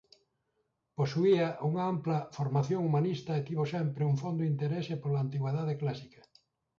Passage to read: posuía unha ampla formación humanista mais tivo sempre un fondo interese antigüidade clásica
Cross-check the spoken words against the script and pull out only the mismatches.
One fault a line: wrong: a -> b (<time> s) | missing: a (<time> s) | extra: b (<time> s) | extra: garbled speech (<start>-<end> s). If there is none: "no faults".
wrong: mais -> e (3.4 s)
extra: pola (5.0 s)